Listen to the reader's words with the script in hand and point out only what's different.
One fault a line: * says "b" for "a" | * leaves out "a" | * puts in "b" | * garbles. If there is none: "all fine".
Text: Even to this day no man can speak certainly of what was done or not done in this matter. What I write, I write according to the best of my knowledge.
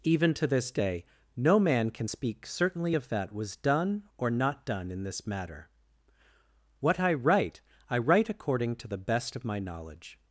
* says "that" for "what"